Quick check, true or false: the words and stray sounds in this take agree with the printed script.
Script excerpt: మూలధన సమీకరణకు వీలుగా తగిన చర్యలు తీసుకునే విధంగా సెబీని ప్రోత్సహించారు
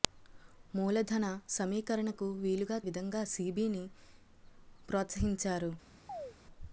false